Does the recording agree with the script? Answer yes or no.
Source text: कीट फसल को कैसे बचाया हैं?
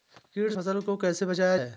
yes